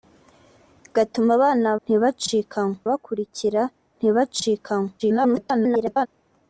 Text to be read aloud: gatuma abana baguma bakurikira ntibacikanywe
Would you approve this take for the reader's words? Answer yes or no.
no